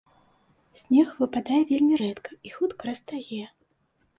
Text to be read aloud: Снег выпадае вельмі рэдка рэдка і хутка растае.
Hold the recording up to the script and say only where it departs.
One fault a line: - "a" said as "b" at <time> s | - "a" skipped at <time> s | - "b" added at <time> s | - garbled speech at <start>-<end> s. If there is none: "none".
- "рэдка" skipped at 2.3 s